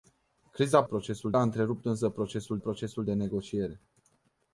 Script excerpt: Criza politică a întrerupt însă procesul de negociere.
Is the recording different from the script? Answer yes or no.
yes